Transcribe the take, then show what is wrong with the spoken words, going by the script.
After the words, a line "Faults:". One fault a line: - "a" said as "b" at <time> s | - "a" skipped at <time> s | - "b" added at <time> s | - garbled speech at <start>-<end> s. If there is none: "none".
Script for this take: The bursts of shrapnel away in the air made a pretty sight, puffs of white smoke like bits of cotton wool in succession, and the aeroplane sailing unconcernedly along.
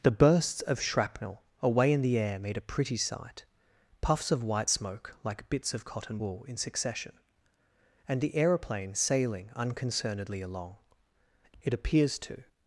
The bursts of shrapnel away in the air made a pretty sight, puffs of white smoke like bits of cotton wool in succession, and the aeroplane sailing unconcernedly along. It appears to
Faults:
- "It appears to" added at 11.6 s